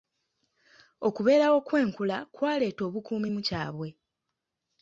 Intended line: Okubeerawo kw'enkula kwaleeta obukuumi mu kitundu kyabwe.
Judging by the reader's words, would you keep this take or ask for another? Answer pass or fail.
fail